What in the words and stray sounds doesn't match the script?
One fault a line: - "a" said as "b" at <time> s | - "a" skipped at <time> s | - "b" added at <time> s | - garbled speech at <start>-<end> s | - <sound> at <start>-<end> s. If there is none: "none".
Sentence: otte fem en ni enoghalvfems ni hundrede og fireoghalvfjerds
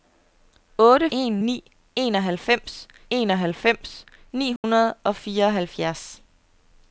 - "fem" skipped at 1.1 s
- "enoghalvfems" added at 3.2 s
- dropout at 4.6-4.6 s